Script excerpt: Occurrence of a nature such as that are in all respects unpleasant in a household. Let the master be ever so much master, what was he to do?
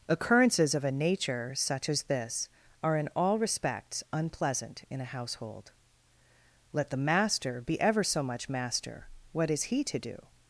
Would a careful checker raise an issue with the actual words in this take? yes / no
yes